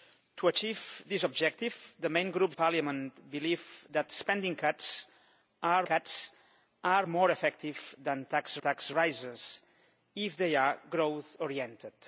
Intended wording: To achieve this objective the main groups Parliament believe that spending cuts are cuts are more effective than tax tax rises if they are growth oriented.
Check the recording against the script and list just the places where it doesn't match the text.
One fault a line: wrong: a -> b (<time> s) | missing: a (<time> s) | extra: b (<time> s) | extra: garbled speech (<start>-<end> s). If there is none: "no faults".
no faults